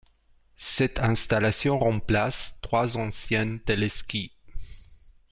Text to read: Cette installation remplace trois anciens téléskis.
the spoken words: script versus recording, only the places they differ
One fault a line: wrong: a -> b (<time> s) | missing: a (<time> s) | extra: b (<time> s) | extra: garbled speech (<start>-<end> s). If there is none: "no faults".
no faults